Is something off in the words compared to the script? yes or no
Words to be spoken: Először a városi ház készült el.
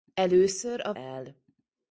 yes